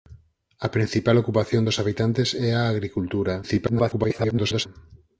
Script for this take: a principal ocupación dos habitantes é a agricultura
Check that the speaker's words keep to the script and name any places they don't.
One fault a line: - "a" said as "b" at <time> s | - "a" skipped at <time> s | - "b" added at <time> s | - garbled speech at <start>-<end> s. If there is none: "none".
- garbled speech at 3.4-4.7 s